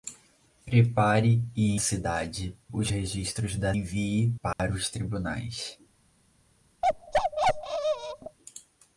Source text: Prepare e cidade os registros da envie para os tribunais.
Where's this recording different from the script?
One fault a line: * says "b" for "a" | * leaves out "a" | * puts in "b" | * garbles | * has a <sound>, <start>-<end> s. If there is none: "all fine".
* has a dropout, 4.5-4.6 s
* has a bark, 6.8-8.4 s